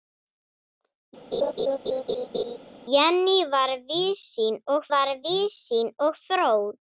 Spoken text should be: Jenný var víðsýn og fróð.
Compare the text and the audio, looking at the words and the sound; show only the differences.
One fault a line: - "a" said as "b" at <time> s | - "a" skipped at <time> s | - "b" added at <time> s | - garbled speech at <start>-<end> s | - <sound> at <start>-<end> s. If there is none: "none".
- laugh at 1.3-2.6 s
- "var víðsýn og" added at 4.9 s